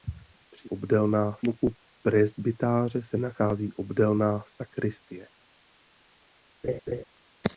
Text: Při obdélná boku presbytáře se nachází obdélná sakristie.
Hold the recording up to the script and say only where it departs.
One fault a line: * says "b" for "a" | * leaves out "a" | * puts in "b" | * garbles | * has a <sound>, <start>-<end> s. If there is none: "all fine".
* has a laugh, 6.6-7.0 s